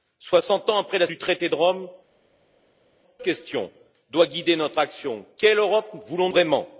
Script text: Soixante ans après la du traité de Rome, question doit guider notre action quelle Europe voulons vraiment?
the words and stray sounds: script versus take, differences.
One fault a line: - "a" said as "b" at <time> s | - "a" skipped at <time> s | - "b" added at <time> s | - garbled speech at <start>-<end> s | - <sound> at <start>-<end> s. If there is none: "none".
none